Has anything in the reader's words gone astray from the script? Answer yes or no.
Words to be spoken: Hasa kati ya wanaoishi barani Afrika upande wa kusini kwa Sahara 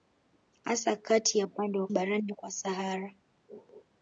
yes